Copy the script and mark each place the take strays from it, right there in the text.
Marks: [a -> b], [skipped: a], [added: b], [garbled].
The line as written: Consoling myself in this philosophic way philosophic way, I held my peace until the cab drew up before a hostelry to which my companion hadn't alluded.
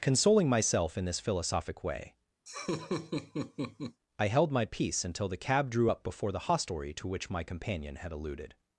Consoling myself in this philosophic way [skipped: philosophic way,] I held my peace until the cab drew up before [a -> the] hostelry to which my companion [hadn't -> had] alluded.